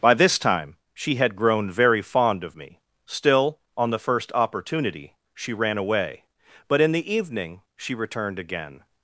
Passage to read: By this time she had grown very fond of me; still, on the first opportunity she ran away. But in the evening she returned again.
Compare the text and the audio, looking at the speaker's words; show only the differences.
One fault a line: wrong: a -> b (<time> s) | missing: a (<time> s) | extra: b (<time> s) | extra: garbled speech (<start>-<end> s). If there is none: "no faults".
no faults